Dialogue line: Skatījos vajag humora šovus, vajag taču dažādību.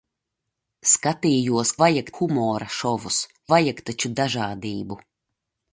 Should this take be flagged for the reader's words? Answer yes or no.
no